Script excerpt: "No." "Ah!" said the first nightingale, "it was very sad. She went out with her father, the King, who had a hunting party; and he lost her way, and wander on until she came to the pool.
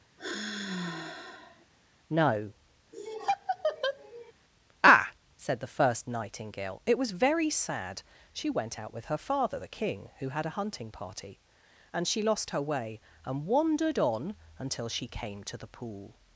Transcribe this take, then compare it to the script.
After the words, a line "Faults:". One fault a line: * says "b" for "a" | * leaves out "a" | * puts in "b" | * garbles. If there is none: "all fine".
"No." "Ah!" said the first nightingale, "it was very sad. She went out with her father, the King, who had a hunting party; and she lost her way, and wandered on until she came to the pool.
Faults:
* says "she" for "he"
* says "wandered" for "wander"